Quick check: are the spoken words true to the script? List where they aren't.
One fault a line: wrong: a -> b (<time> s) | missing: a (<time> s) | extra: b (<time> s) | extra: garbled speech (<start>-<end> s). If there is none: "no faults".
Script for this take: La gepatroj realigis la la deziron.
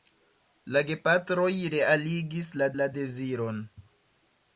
no faults